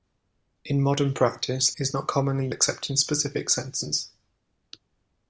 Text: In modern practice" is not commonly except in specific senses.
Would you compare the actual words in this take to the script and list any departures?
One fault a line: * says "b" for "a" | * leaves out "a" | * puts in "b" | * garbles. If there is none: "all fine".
all fine